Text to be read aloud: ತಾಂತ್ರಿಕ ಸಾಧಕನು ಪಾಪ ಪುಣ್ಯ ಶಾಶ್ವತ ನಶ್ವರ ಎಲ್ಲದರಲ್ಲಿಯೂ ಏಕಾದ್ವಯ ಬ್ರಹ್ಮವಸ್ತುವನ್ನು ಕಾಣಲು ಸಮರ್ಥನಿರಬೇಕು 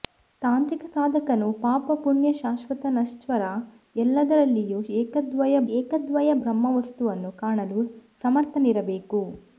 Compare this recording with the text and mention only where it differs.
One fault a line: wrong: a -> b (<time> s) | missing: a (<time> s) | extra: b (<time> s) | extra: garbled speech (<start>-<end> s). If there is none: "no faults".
extra: ಏಕಾದ್ವಯ (5.7 s)